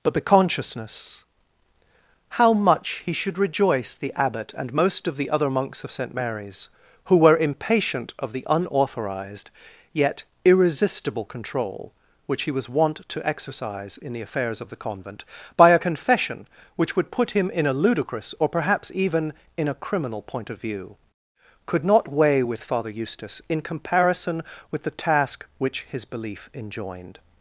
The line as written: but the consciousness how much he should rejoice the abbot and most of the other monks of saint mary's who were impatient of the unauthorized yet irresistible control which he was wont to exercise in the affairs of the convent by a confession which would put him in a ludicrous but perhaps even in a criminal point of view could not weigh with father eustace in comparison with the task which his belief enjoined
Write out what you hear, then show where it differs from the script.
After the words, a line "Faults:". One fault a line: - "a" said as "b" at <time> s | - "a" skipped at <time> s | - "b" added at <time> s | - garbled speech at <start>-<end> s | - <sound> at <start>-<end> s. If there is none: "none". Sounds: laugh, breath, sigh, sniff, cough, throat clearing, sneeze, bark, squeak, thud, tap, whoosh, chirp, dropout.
but the consciousness how much he should rejoice the abbot and most of the other monks of saint mary's who were impatient of the unauthorized yet irresistible control which he was wont to exercise in the affairs of the convent by a confession which would put him in a ludicrous or perhaps even in a criminal point of view could not weigh with father eustace in comparison with the task which his belief enjoined
Faults:
- "but" said as "or" at 18.4 s